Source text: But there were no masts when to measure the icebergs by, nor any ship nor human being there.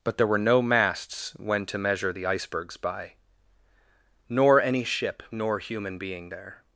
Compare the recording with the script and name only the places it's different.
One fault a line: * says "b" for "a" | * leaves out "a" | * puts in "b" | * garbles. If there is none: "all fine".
all fine